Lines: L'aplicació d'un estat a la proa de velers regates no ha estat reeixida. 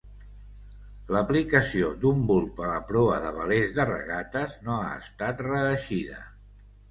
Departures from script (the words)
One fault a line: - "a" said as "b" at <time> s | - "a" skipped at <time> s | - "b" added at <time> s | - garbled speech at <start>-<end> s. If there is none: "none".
- "estat" said as "bulb" at 2.3 s
- "de" added at 3.8 s